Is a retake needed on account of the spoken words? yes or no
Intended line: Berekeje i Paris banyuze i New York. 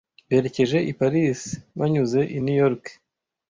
no